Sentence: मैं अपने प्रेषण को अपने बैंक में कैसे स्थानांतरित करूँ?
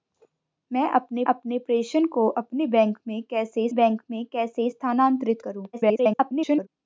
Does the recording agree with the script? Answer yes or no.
no